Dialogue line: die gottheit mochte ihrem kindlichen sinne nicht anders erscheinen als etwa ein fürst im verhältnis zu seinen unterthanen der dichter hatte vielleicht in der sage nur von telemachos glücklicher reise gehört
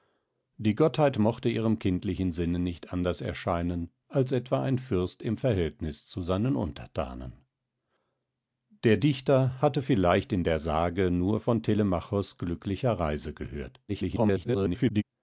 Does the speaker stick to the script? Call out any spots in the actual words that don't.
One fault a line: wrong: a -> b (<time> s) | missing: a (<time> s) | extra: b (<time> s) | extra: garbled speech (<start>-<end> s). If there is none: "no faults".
extra: garbled speech (13.9-15.0 s)